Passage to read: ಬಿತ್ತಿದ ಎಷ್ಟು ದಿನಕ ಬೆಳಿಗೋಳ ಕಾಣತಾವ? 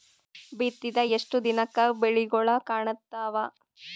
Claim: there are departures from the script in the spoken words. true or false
false